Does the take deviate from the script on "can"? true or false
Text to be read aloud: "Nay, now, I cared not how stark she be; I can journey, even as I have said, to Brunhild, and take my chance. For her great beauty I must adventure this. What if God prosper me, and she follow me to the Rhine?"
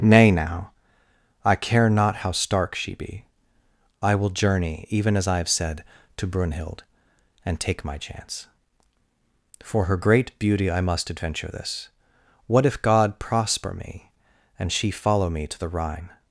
true